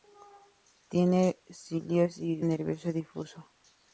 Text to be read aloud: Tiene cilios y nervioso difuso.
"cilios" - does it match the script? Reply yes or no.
yes